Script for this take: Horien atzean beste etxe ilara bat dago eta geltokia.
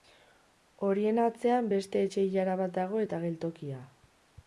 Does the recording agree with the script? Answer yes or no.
yes